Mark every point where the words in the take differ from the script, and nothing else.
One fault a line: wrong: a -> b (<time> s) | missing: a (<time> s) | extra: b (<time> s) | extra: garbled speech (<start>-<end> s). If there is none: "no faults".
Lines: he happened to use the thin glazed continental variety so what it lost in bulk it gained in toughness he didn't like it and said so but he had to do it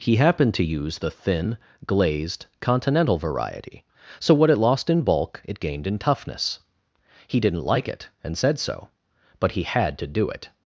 no faults